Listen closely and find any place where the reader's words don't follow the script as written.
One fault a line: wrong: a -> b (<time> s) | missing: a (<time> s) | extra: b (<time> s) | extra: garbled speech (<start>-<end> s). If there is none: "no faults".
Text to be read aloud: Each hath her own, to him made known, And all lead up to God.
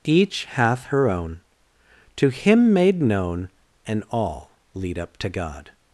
no faults